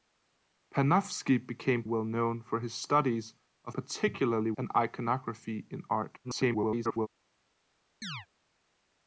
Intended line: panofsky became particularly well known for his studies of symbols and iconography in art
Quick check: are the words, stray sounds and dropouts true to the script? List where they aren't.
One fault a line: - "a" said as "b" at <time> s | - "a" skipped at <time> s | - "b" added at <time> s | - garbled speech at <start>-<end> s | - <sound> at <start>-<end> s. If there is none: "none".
- "particularly" skipped at 1.8 s
- "symbols" said as "particularly" at 3.7 s
- garbled speech at 6.2-7.1 s
- chirp at 8.0-8.3 s